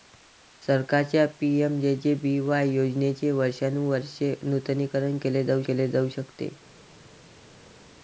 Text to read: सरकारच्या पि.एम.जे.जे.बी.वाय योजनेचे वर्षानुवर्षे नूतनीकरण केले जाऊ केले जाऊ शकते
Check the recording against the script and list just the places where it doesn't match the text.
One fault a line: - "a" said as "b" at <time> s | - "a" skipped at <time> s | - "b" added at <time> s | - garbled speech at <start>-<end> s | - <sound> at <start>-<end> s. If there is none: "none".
none